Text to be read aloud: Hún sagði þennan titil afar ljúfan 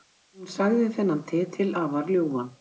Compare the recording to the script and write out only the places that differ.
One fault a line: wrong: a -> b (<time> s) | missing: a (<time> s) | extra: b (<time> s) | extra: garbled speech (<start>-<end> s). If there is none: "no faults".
no faults